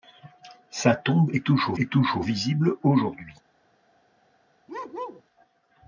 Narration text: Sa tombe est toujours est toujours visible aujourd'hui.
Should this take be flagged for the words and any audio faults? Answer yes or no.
yes